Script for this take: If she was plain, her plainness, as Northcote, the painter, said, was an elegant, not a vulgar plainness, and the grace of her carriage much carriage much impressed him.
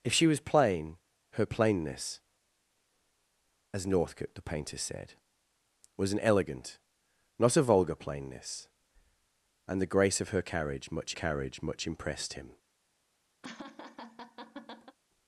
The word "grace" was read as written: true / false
true